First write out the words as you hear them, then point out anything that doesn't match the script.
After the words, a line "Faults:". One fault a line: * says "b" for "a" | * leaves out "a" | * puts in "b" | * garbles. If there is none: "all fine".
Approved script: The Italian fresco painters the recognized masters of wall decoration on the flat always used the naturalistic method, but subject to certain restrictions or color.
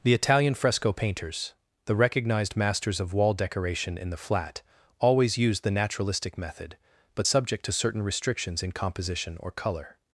The Italian fresco painters the recognized masters of wall decoration in the flat always used the naturalistic method, but subject to certain restrictions in composition or color.
Faults:
* says "in" for "on"
* puts in "in composition"